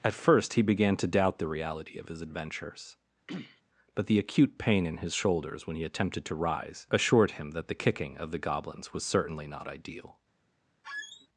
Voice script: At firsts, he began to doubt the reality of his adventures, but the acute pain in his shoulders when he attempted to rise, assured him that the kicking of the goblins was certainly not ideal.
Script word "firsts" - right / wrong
wrong